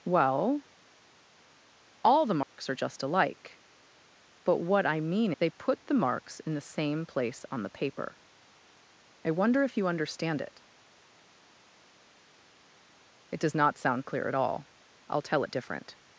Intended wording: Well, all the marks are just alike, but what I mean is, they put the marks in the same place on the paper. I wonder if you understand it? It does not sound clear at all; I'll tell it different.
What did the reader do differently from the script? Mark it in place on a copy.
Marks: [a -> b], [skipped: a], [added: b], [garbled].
Well, all the marks are just alike, but what I mean [skipped: is,] they put the marks in the same place on the paper. I wonder if you understand it? It does not sound clear at all; I'll tell it different.